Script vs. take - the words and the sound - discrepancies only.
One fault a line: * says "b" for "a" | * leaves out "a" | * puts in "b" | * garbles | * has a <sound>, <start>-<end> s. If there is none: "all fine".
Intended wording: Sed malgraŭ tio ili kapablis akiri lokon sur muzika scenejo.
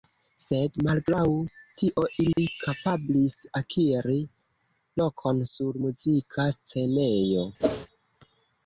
* has a dropout, 2.3-2.4 s
* has a whoosh, 7.6-7.9 s